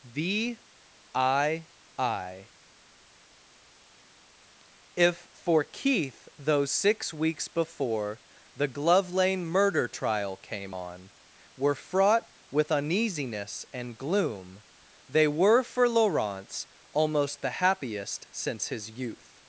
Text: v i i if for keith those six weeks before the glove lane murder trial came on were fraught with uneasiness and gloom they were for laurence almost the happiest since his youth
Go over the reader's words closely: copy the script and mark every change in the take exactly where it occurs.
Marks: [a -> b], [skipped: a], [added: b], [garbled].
v i i if for keith those six weeks before the glove lane murder trial came on were fraught with uneasiness and gloom they were for laurence almost the happiest since his youth